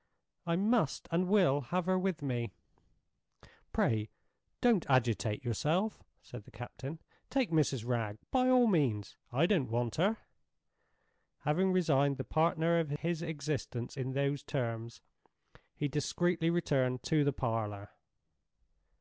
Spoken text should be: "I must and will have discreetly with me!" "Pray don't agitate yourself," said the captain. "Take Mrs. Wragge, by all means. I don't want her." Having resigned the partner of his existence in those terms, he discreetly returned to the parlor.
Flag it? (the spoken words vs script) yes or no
yes